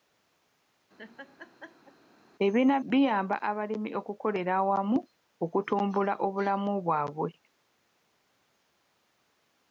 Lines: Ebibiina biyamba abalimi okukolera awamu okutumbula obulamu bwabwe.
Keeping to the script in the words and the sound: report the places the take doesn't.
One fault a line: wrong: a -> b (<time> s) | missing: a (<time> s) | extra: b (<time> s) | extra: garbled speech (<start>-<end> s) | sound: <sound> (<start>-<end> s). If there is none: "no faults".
sound: laugh (1.0-2.0 s)